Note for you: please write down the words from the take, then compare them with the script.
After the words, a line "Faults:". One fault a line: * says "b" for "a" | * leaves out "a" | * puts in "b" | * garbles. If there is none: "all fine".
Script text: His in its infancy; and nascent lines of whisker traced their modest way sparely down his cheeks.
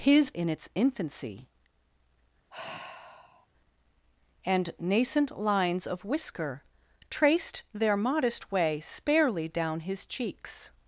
His in its infancy; and nascent lines of whisker traced their modest way sparely down his cheeks.
Faults:
all fine